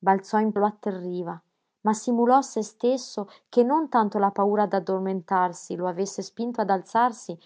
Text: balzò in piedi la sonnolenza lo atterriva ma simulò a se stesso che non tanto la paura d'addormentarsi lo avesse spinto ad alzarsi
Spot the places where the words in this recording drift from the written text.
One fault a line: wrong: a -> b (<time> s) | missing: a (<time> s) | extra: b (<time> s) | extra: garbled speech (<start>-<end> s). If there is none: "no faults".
missing: piedi la sonnolenza (0.5 s)